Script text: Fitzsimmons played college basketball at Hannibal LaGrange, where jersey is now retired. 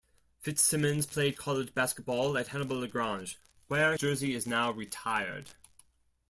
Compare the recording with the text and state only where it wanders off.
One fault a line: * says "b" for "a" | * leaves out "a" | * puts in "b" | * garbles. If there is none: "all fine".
all fine